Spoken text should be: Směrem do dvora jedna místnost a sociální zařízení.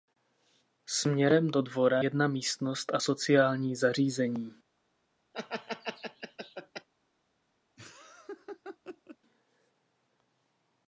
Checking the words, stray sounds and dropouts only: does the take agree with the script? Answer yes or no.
no